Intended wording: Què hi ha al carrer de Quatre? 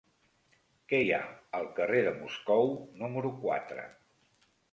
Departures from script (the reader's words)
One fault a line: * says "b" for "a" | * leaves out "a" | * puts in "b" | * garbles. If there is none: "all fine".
* puts in "Moscou número"